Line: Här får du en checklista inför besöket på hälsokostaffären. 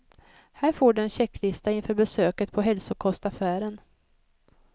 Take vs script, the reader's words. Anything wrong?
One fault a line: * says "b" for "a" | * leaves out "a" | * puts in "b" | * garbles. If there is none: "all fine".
all fine